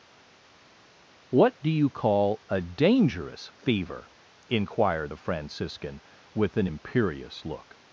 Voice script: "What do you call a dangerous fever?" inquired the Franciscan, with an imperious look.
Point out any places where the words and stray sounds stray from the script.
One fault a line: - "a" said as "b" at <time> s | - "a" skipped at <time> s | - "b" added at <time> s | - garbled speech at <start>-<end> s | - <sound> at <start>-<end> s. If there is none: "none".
none